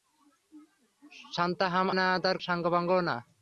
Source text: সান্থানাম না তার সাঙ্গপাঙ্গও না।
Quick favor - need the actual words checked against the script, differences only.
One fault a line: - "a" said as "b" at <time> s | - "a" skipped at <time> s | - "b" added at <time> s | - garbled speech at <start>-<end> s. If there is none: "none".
none